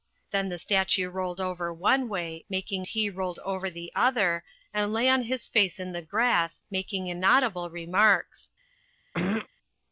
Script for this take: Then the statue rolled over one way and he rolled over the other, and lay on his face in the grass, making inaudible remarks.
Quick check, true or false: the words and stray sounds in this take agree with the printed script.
false